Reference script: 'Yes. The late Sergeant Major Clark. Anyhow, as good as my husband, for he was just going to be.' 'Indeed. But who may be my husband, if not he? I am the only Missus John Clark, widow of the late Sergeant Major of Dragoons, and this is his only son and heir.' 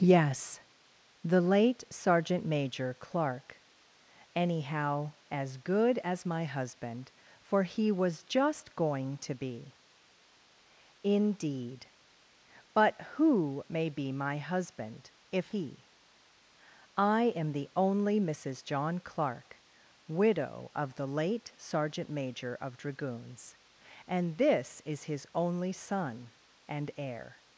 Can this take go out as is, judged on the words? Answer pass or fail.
fail